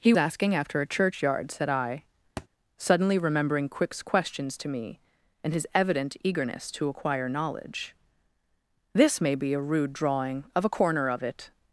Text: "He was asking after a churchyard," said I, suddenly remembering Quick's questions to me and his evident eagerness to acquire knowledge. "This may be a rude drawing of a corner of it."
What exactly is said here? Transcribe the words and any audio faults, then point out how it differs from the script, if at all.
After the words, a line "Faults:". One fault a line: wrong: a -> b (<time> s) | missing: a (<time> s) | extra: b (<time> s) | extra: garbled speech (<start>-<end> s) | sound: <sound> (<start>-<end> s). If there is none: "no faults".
"He asking after a churchyard," said I, suddenly remembering Quick's questions to me and his evident eagerness to acquire knowledge. "This may be a rude drawing of a corner of it."
Faults:
missing: was (0.1 s)
sound: thud (2.4-2.5 s)